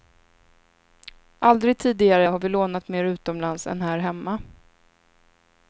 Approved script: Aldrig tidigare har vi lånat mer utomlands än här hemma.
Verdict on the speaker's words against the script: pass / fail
pass